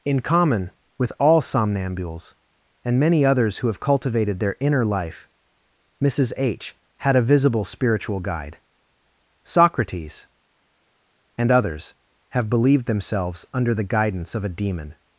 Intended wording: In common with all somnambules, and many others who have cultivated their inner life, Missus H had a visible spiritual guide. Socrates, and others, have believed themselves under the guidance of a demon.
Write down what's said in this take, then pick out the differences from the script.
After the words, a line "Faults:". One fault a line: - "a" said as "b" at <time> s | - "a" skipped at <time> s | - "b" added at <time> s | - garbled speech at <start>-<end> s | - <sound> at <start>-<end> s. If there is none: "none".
In common with all somnambules, and many others who have cultivated their inner life, Missus H had a visible spiritual guide. Socrates, and others, have believed themselves under the guidance of a demon.
Faults:
none